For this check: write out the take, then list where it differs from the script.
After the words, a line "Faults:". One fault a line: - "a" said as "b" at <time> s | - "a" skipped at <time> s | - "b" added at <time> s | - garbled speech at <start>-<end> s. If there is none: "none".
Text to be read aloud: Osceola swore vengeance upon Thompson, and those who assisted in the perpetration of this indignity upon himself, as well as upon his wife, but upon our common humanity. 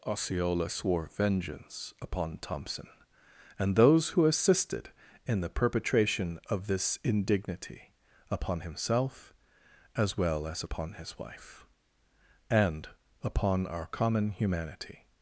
Osceola swore vengeance upon Thompson, and those who assisted in the perpetration of this indignity upon himself, as well as upon his wife, and upon our common humanity.
Faults:
- "but" said as "and" at 12.5 s